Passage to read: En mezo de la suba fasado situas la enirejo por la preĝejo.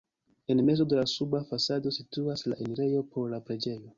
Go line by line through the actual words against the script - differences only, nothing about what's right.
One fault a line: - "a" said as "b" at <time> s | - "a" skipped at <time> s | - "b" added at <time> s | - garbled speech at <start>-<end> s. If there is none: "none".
none